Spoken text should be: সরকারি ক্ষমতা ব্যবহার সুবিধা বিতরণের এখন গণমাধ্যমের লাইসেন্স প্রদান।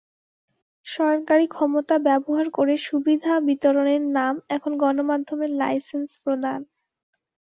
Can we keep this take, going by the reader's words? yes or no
no